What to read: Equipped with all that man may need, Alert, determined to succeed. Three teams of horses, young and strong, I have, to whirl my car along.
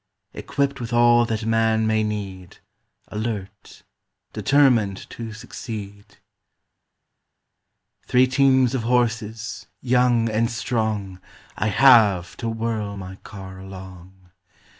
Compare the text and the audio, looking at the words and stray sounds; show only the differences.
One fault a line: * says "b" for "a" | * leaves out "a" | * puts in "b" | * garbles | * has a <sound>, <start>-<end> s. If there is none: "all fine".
all fine